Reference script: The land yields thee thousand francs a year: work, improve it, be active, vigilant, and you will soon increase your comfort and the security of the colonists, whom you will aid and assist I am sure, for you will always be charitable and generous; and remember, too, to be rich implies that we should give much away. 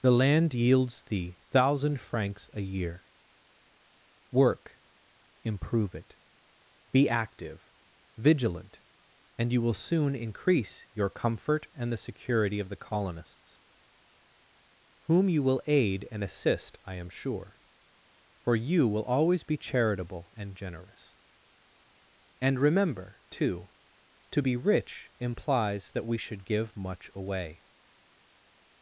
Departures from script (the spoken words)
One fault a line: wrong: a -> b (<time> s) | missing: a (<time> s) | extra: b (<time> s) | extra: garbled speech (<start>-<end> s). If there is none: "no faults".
no faults